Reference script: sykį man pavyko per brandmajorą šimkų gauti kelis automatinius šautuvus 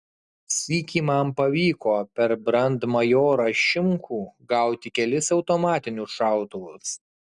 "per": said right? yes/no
yes